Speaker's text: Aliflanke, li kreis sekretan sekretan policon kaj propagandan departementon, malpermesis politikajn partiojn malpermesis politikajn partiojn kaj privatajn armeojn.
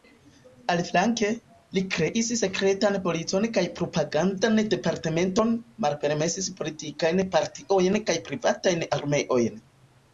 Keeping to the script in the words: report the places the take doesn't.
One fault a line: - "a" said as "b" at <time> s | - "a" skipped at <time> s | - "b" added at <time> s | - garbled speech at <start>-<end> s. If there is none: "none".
- "sekretan" skipped at 3.0 s
- "malpermesis politikajn partiojn" skipped at 8.0 s